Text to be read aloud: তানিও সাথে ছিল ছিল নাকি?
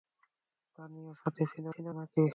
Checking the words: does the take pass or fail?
pass